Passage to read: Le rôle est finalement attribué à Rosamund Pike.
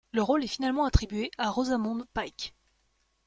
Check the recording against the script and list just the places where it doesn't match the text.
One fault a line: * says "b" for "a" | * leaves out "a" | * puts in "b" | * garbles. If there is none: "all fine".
all fine